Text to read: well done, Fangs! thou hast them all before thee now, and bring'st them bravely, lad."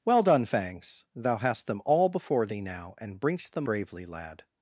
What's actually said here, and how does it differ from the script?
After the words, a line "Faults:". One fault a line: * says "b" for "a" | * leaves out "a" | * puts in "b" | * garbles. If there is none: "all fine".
well done, Fangs! thou hast them all before thee now, and bring'st them bravely, lad."
Faults:
all fine